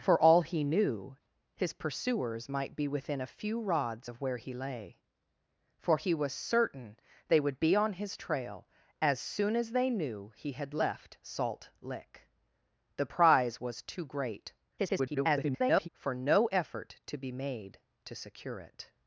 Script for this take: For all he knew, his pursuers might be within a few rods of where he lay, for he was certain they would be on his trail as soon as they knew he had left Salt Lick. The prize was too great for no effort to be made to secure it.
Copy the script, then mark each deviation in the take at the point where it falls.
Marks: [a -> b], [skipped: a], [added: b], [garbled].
For all he knew, his pursuers might be within a few rods of where he lay, for he was certain they would be on his trail as soon as they knew he had left Salt Lick. The prize was too great [garbled] for no effort to be made to secure it.